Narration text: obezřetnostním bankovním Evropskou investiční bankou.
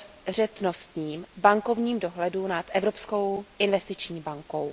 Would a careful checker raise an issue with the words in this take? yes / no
yes